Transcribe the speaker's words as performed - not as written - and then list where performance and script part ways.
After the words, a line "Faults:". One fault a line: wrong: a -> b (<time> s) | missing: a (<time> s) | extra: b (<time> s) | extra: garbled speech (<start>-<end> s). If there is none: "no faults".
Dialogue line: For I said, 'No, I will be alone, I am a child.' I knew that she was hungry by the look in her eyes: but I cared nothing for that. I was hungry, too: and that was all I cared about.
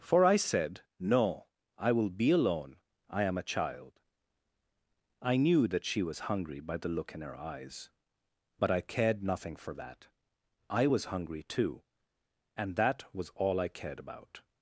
For I said, 'No, I will be alone, I am a child.' I knew that she was hungry by the look in her eyes: but I cared nothing for that. I was hungry, too: and that was all I cared about.
Faults:
no faults